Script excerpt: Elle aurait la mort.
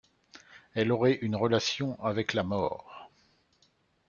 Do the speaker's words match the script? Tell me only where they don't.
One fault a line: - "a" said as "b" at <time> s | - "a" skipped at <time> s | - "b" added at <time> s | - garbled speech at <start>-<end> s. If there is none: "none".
- "une relation avec" added at 1.2 s